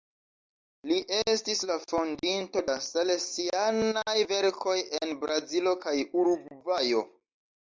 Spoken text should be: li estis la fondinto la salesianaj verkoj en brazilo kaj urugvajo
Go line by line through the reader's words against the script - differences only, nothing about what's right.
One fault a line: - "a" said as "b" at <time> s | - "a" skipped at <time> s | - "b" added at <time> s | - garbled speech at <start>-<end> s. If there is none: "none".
none